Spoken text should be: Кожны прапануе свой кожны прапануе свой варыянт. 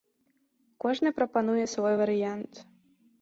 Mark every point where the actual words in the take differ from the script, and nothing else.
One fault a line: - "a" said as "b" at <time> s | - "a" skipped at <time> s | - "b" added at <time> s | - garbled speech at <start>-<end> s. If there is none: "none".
- "кожны прапануе свой" skipped at 1.9 s